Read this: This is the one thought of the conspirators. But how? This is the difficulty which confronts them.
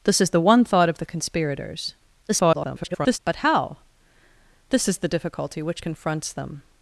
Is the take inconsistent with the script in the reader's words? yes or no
yes